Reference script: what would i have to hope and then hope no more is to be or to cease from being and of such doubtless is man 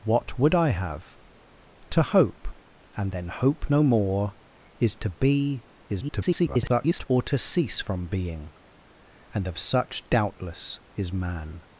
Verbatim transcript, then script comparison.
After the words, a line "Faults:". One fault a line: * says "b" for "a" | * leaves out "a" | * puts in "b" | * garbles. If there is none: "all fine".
what would i have to hope and then hope no more is to be [garbled] or to cease from being and of such doubtless is man
Faults:
* garbles